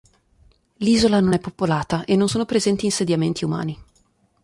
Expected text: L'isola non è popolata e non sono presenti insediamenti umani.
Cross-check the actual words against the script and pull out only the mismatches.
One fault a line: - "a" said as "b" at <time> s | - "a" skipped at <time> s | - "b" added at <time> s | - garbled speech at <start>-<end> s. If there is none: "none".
none